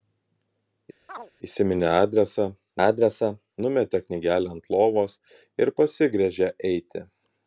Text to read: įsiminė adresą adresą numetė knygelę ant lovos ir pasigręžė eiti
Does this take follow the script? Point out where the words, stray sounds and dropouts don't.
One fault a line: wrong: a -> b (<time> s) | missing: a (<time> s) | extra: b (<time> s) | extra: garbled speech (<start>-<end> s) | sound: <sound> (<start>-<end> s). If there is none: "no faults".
sound: chirp (1.1-1.3 s)